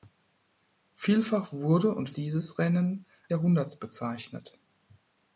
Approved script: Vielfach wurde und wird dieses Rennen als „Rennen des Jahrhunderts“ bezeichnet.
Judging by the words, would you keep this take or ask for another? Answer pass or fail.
fail